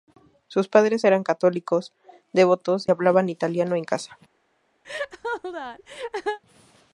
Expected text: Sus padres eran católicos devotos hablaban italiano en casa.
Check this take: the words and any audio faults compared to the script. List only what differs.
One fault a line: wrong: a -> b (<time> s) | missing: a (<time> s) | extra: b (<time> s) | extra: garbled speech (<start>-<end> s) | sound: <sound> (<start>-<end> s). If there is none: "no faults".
sound: laugh (4.8-6.4 s)